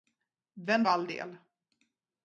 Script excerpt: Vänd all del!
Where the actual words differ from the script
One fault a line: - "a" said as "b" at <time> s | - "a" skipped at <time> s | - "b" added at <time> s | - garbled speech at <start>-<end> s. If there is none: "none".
none